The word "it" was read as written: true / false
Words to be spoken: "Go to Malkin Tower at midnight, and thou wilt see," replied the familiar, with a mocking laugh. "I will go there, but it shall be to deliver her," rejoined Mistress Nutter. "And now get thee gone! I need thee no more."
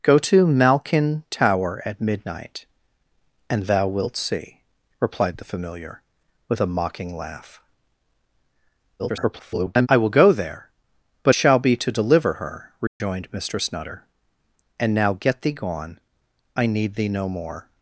false